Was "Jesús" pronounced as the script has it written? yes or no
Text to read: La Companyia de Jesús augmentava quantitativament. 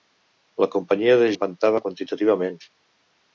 no